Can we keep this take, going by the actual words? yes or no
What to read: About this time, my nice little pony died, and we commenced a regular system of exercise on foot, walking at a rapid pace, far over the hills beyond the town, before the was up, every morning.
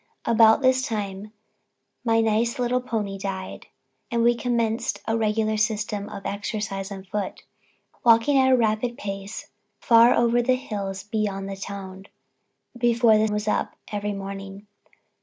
yes